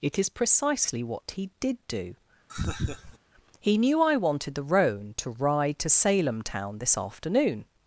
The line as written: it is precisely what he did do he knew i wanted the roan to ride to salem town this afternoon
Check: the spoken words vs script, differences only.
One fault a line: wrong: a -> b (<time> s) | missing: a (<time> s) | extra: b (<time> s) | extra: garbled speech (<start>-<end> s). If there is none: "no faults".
no faults